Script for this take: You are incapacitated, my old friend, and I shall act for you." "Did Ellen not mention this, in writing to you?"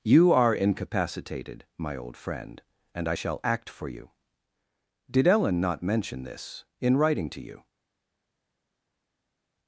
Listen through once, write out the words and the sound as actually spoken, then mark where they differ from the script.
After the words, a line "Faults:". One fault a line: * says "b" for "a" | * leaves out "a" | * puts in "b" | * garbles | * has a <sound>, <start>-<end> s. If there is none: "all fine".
You are incapacitated, my old friend, and I shall act for you." "Did Ellen not mention this, in writing to you?"
Faults:
all fine